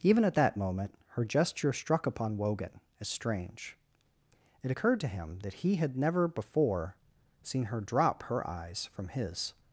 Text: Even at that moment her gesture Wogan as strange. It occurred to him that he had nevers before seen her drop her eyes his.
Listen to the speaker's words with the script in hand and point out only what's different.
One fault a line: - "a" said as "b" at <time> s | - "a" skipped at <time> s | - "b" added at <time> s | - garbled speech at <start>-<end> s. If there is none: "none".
- "struck upon" added at 1.7 s
- "nevers" said as "never" at 6.0 s
- "from" added at 8.9 s